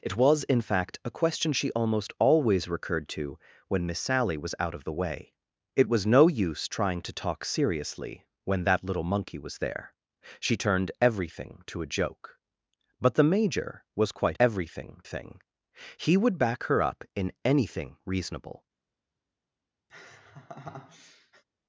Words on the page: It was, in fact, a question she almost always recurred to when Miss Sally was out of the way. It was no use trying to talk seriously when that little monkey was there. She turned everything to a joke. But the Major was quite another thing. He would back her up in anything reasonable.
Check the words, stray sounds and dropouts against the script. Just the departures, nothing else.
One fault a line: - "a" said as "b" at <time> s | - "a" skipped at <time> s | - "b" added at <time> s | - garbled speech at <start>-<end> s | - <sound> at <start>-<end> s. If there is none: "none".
- "another" said as "everything" at 14.4 s
- laugh at 19.9-21.4 s